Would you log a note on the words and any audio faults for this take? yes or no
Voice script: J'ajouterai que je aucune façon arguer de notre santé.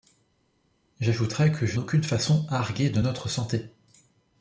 no